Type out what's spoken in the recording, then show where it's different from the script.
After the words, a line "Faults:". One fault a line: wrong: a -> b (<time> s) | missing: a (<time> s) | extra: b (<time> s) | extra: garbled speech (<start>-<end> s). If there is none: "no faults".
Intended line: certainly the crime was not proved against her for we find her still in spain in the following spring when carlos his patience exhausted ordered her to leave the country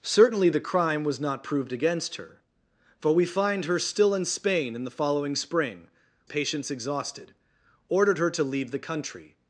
certainly the crime was not proved against her for we find her still in spain in the following spring patience exhausted ordered her to leave the country
Faults:
missing: when carlos his (5.9 s)